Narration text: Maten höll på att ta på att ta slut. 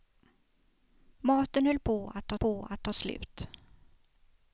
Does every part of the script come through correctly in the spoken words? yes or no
yes